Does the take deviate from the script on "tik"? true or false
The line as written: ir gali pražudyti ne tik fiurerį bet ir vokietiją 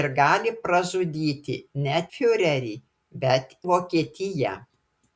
true